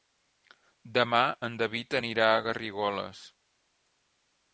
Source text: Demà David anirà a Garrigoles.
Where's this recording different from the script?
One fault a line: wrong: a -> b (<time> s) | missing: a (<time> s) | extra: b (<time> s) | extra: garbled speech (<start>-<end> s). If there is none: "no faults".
extra: en (1.5 s)